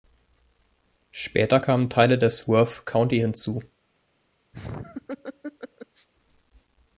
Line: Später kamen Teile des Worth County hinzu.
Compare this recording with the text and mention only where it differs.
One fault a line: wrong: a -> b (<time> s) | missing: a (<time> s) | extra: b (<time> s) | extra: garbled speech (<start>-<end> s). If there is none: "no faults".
no faults